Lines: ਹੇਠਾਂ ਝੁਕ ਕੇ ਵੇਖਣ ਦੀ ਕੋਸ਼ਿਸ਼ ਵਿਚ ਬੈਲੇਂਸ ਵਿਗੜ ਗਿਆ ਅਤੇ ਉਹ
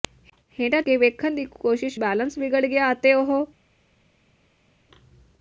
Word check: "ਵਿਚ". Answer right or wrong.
wrong